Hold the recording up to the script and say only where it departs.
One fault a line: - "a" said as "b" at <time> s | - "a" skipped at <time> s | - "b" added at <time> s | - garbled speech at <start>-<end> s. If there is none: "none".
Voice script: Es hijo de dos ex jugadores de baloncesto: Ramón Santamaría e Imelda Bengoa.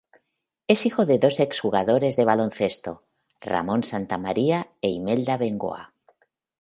none